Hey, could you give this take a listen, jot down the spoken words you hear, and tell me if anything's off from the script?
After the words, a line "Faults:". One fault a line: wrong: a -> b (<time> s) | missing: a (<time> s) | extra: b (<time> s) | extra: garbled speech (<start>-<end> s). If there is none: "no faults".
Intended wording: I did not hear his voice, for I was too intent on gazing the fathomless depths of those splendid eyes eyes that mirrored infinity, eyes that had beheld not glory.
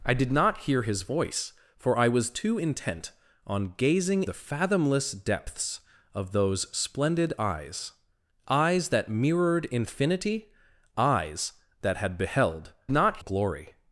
I did not hear his voice, for I was too intent on gazing the fathomless depths of those splendid eyes eyes that mirrored infinity, eyes that had beheld not glory.
Faults:
no faults